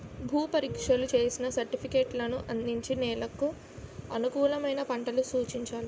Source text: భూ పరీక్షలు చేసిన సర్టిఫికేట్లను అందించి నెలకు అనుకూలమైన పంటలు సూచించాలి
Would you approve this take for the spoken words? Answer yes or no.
yes